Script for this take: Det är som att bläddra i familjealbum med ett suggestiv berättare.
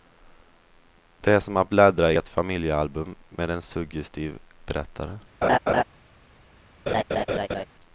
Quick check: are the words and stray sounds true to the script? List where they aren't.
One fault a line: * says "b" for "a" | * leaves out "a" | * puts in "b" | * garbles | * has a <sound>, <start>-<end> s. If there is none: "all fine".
* puts in "ett"
* says "en" for "ett"
* has a laugh, 5.4-5.8 s
* has a laugh, 6.9-7.7 s